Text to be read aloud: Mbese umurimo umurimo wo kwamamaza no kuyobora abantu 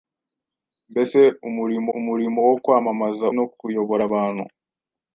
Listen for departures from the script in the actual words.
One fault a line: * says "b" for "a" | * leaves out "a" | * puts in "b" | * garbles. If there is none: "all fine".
all fine